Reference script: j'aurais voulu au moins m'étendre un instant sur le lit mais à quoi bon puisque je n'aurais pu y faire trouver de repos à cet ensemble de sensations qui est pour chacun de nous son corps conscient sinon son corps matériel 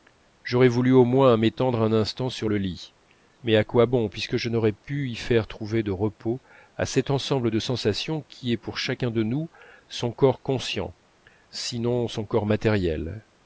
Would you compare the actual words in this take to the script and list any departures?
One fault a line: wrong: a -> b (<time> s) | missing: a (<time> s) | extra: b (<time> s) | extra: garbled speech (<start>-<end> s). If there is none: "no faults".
no faults